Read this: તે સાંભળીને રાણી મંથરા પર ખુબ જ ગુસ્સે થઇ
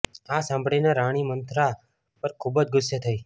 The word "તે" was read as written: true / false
false